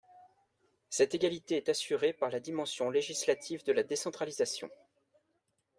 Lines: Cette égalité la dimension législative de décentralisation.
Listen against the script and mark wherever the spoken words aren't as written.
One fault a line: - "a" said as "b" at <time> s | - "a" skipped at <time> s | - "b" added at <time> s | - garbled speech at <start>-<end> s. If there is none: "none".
- "est assurée par" added at 1.6 s
- "la" added at 3.7 s